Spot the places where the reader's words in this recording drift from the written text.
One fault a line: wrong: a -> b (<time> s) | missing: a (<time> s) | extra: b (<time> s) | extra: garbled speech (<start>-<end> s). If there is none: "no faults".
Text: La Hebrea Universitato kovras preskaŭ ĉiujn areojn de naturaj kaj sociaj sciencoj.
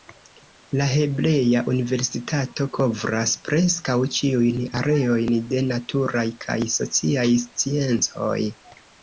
no faults